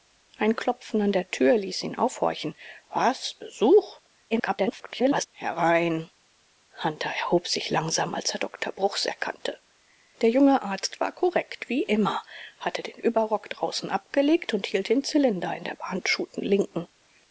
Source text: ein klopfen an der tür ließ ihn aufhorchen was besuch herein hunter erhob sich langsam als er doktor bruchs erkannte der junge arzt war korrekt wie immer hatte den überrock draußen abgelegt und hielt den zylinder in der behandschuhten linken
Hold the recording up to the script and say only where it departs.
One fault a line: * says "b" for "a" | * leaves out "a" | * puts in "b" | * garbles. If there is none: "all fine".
* garbles